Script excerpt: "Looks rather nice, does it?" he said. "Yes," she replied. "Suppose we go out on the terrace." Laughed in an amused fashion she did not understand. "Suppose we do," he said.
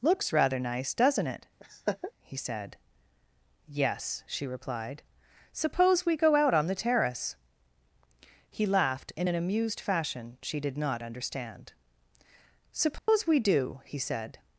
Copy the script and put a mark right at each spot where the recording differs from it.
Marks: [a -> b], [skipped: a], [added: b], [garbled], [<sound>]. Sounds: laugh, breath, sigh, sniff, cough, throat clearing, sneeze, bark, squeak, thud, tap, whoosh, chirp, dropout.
"Looks rather nice, [does -> doesn't] it?" [laugh] he said. "Yes," she replied. "Suppose we go out on the terrace." [added: He] Laughed in an amused fashion she did not understand. "Suppose [dropout] we do," he said.